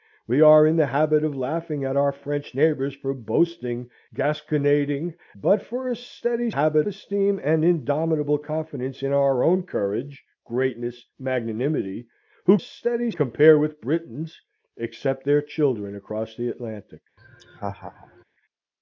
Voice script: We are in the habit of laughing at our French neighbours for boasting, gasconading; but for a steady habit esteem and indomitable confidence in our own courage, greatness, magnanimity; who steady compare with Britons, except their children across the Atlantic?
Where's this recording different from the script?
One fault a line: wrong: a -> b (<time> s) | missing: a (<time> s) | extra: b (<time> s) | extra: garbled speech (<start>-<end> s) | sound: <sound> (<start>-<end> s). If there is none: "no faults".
sound: laugh (17.2-18.2 s)